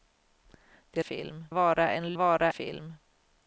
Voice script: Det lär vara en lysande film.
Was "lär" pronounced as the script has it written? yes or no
no